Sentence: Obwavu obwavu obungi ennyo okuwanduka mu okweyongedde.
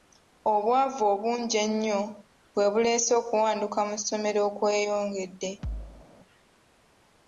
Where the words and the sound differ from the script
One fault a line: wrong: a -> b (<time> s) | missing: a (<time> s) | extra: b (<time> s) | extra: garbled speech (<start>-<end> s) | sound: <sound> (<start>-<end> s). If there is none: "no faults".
missing: obwavu (1.0 s)
extra: bwe buleese (2.5 s)
extra: ssomero (4.0 s)
sound: thud (5.6-6.1 s)